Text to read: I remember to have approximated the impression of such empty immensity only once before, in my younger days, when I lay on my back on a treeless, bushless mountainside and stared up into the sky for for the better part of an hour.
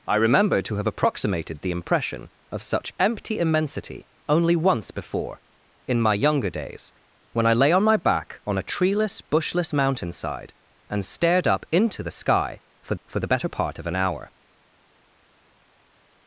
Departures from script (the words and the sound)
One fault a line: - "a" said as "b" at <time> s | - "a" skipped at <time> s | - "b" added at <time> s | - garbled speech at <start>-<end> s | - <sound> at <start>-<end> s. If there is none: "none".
none